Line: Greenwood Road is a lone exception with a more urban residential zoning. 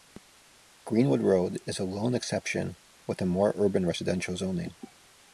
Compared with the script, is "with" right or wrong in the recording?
right